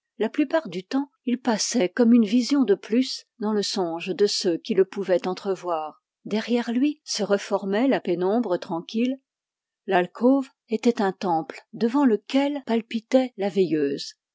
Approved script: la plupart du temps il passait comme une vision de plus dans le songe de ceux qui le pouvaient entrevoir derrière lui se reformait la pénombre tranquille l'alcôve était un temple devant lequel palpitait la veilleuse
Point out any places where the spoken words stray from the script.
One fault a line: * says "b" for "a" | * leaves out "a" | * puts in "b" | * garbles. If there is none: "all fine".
all fine